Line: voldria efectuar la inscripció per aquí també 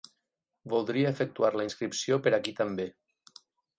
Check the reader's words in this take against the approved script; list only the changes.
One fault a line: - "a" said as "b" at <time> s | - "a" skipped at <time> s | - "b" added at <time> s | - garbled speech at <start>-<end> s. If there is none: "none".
none